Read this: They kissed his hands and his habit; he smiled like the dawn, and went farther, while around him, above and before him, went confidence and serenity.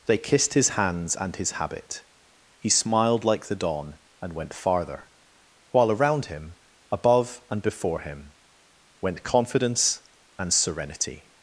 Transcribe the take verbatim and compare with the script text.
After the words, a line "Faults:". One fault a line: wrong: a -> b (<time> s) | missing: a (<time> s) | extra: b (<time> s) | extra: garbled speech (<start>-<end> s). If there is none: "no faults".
They kissed his hands and his habit; he smiled like the dawn, and went farther, while around him, above and before him, went confidence and serenity.
Faults:
no faults